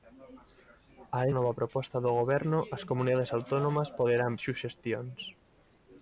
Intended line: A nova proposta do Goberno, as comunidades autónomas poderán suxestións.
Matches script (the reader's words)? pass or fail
pass